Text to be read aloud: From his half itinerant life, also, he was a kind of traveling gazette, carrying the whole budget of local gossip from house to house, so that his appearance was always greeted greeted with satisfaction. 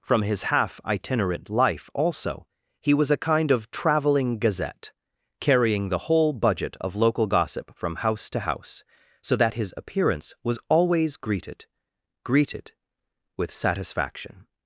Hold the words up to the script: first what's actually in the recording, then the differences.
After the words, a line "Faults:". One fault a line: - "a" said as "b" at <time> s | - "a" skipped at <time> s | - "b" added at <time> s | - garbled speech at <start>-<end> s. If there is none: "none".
From his half itinerant life, also, he was a kind of traveling gazette, carrying the whole budget of local gossip from house to house, so that his appearance was always greeted greeted with satisfaction.
Faults:
none